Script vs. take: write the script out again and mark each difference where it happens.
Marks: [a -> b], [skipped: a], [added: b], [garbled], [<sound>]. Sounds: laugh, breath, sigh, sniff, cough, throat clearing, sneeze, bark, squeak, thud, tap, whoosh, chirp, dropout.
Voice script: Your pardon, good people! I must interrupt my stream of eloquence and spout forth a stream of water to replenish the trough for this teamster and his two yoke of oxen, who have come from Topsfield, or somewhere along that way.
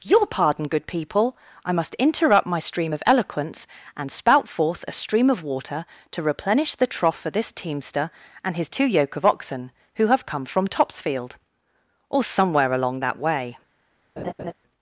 Your pardon, good people! I must interrupt my stream of eloquence and spout forth a stream of water to replenish the trough for this teamster and his two yoke of oxen, who have come from Topsfield, or somewhere along that way. [laugh]